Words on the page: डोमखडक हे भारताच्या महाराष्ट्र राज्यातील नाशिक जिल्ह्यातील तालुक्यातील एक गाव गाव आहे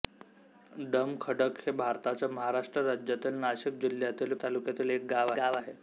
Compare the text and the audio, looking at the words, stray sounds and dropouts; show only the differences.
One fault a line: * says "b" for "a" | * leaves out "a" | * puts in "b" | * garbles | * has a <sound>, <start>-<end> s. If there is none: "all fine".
all fine